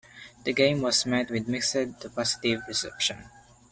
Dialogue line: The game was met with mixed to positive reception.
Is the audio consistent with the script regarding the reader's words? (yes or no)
yes